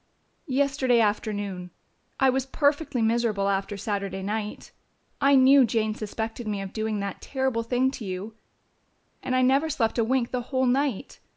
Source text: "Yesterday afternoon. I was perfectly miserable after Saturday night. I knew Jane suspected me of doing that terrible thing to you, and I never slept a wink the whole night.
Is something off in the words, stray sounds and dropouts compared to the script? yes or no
no